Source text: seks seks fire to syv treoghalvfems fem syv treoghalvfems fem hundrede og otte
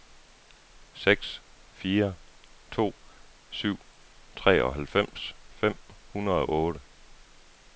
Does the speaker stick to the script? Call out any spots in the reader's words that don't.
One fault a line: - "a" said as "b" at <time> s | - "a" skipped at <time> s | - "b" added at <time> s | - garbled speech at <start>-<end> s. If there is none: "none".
- "seks" skipped at 1.4 s
- "syv treoghalvfems fem" skipped at 5.8 s